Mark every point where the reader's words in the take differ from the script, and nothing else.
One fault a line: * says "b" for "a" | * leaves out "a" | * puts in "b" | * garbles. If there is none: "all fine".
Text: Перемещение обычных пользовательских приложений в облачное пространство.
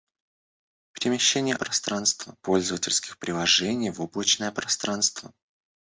* says "пространство" for "обычных"